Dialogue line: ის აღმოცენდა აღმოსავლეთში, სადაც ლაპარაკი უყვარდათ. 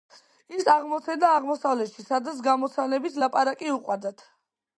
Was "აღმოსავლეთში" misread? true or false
false